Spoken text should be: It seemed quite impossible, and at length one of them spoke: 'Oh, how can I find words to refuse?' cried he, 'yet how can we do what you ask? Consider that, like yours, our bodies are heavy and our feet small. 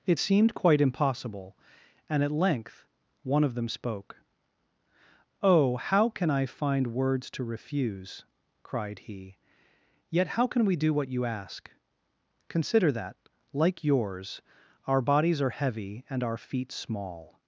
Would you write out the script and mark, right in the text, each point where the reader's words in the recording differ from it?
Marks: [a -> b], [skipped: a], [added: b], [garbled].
It seemed quite impossible, and at length one of them spoke: 'Oh, how can I find words to refuse?' cried he, 'yet how can we do what you ask? Consider that, like yours, our bodies are heavy and our feet small.